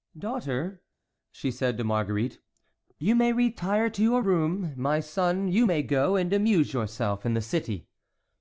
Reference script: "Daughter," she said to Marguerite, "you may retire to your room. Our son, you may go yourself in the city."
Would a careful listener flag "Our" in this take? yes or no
yes